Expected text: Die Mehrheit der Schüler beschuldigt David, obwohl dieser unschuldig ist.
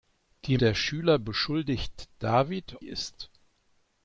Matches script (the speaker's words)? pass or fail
fail